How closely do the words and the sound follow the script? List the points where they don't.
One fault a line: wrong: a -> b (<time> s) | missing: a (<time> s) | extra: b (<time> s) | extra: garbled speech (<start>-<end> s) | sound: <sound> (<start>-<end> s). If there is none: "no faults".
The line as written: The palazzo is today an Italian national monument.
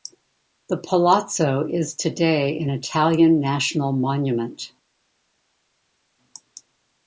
no faults